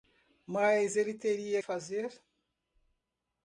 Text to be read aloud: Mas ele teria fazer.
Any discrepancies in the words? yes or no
no